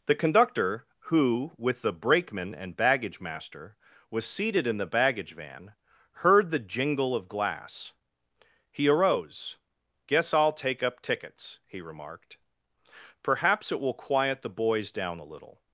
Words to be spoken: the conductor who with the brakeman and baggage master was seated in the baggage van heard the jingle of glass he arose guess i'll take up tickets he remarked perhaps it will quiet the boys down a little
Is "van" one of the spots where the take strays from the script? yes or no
no